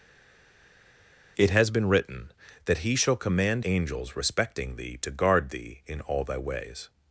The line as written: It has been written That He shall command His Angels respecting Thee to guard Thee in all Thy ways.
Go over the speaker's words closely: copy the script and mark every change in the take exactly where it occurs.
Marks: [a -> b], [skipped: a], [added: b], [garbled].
It has been written That He shall command [skipped: His] Angels respecting Thee to guard Thee in all Thy ways.